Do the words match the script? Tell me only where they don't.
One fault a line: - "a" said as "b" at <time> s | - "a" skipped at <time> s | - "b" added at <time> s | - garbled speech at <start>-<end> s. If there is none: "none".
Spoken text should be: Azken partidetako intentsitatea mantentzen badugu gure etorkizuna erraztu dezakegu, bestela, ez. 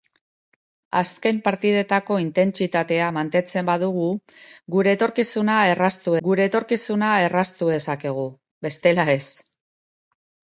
- "gure etorkizuna erraztu" added at 6.3 s